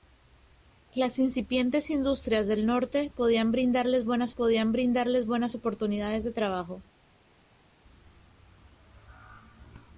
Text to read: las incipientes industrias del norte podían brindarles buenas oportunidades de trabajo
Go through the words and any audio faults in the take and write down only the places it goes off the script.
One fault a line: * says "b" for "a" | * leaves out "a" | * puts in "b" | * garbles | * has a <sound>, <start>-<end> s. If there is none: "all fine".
* puts in "podían brindarles buenas"